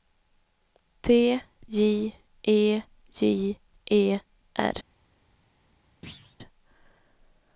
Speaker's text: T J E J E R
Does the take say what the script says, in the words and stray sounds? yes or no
no